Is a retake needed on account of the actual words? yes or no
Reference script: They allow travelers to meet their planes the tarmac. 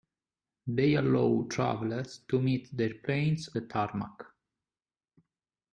no